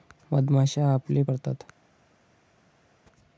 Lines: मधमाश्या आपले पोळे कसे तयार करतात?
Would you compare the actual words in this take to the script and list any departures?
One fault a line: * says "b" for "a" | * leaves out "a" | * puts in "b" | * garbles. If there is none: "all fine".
* leaves out "पोळे कसे तयार"